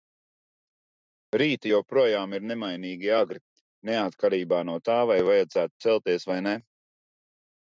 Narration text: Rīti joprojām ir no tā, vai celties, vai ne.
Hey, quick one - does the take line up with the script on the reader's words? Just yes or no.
no